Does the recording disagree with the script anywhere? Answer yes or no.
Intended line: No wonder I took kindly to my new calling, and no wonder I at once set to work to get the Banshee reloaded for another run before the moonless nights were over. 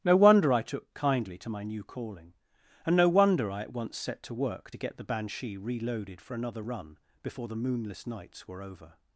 no